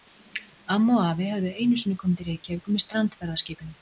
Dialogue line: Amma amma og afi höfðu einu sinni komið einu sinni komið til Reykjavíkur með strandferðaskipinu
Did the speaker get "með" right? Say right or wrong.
right